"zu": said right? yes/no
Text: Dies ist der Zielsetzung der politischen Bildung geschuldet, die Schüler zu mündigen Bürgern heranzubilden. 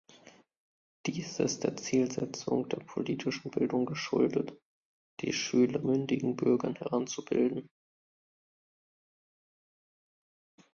no